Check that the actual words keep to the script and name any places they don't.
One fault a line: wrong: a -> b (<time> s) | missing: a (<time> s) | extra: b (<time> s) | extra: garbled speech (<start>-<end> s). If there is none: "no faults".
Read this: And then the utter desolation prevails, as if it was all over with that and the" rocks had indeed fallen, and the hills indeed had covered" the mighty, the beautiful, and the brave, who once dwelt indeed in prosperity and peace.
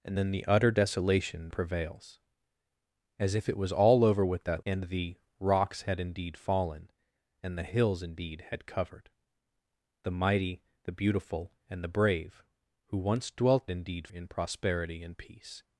no faults